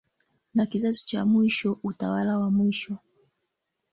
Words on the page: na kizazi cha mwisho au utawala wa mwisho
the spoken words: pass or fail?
fail